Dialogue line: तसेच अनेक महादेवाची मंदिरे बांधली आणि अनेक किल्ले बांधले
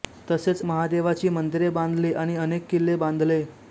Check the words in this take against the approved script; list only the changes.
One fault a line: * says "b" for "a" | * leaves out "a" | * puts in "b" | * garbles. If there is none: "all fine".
* leaves out "अनेक"